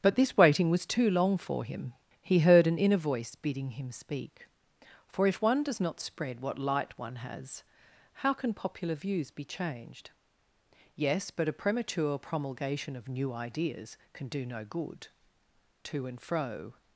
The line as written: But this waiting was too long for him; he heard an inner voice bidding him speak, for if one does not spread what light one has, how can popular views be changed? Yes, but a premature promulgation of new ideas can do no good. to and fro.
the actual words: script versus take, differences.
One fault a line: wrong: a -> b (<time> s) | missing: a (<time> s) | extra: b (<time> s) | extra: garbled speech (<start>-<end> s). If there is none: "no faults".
no faults